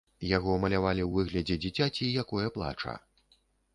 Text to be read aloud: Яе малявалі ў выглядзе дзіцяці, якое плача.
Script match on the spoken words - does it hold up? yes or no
no